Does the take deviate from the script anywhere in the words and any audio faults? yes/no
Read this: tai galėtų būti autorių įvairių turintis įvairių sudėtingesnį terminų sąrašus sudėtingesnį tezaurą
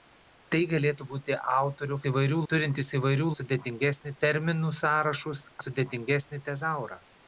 no